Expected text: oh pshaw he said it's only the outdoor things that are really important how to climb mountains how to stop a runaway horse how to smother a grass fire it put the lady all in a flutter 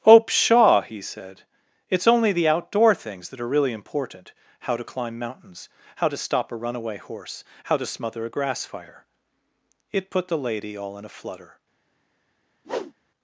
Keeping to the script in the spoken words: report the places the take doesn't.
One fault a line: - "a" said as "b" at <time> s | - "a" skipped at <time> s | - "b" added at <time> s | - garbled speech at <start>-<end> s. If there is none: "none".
none